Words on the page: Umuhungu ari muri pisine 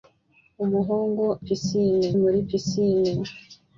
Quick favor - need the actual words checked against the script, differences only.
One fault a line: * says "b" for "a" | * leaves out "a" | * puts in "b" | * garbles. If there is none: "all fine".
* says "pisine" for "ari"